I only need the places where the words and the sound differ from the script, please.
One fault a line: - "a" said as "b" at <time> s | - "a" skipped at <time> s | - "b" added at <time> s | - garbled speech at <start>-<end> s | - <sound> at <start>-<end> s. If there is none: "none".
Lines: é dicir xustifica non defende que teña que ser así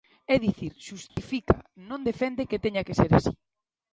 - dropout at 1.1-1.2 s